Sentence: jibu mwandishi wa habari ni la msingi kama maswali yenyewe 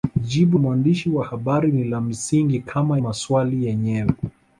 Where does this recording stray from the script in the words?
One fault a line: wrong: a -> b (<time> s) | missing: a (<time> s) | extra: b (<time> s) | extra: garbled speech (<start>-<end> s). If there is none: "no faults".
no faults